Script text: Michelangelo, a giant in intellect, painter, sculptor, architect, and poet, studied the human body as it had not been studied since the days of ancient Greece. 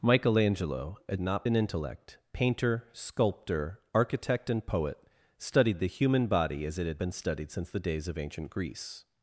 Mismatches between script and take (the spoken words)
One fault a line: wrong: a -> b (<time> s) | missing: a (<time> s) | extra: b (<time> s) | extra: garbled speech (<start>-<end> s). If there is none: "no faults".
wrong: giant -> not (1.2 s)
missing: not (7.0 s)